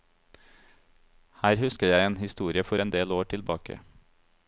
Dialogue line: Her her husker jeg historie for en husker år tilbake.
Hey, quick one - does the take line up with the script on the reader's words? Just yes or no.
no